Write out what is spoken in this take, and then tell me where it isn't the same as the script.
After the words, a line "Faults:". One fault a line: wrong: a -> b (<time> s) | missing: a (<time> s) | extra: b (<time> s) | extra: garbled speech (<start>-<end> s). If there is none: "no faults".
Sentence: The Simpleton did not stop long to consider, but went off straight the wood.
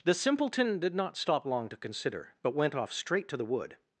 The Simpleton did not stop long to consider, but went off straight to the wood.
Faults:
extra: to (3.3 s)